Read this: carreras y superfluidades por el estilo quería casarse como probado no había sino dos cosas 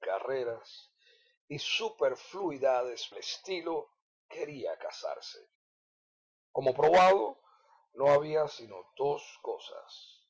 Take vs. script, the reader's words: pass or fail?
fail